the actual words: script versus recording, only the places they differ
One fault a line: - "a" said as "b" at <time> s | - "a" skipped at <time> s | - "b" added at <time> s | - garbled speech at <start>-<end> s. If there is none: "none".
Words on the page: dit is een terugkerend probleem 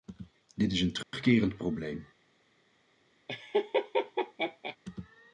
none